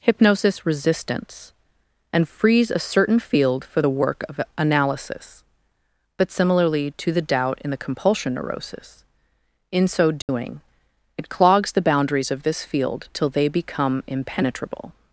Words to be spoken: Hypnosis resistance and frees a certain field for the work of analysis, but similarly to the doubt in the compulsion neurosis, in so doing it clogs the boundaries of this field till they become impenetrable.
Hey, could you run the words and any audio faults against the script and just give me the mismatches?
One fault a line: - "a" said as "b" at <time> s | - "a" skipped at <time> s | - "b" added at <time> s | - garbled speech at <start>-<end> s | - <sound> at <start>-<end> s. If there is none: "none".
- dropout at 10.2-10.3 s